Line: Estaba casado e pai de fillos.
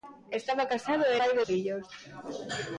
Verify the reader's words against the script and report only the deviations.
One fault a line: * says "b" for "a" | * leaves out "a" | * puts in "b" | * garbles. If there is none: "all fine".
all fine